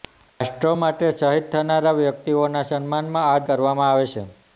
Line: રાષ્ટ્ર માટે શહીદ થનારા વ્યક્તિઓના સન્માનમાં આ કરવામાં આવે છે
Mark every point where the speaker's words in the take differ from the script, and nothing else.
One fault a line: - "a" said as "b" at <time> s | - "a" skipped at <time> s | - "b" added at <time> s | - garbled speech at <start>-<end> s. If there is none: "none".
none